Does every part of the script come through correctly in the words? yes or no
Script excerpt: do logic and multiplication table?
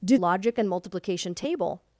yes